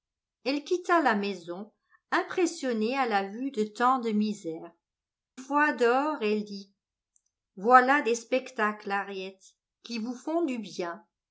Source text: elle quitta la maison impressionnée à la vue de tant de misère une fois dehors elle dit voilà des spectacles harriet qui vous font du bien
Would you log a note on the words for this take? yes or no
yes